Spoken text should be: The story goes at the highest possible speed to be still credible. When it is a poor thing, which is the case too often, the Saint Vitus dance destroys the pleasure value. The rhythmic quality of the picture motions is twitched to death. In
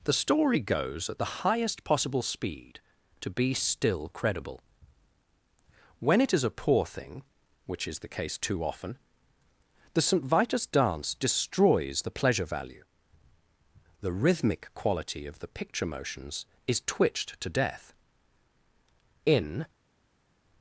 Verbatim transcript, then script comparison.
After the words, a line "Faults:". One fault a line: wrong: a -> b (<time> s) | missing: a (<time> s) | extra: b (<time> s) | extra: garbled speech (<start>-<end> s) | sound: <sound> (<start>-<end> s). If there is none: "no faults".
The story goes at the highest possible speed to be still credible. When it is a poor thing, which is the case too often, the Saint Vitus dance destroys the pleasure value. The rhythmic quality of the picture motions is twitched to death. In
Faults:
no faults